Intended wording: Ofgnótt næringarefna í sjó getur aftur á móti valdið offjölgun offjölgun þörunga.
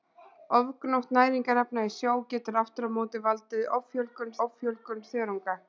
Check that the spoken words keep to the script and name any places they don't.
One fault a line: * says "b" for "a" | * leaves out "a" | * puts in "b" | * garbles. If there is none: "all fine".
all fine